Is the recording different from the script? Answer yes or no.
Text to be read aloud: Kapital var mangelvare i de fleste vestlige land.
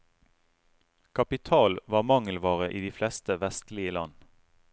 no